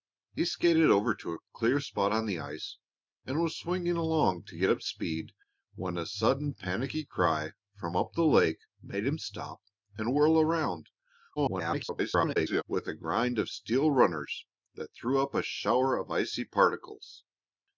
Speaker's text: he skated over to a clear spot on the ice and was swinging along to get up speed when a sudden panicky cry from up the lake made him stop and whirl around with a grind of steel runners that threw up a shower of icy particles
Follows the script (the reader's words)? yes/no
no